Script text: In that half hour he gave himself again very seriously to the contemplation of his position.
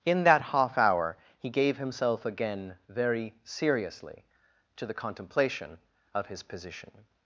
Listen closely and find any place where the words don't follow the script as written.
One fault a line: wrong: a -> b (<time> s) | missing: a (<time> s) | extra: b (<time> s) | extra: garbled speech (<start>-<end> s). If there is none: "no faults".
no faults